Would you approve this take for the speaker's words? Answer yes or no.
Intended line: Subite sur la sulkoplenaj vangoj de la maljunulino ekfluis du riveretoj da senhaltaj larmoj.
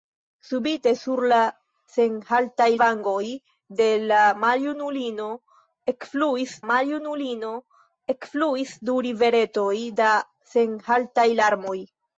no